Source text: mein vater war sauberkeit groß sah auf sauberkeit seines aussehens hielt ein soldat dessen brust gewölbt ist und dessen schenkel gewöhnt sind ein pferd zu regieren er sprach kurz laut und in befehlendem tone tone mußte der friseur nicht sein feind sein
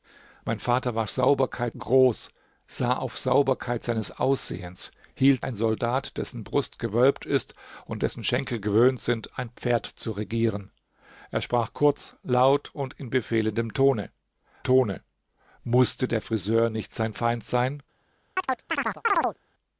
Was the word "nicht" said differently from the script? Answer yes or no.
no